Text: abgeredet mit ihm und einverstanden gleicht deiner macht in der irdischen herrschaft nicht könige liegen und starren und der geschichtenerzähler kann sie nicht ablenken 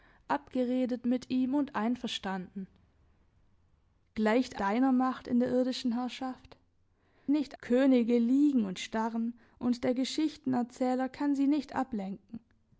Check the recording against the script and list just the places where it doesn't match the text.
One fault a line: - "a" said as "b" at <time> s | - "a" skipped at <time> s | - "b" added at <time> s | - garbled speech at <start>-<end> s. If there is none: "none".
none